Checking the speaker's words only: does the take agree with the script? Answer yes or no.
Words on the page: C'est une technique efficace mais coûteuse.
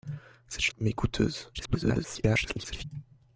no